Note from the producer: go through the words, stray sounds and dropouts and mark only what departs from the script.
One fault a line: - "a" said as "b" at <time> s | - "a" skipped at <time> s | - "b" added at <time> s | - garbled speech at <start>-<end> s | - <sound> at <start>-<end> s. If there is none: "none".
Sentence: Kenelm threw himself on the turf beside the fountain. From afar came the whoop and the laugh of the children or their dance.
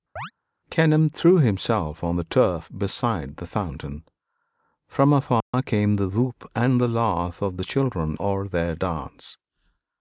- chirp at 0.2-0.3 s
- dropout at 5.4-5.5 s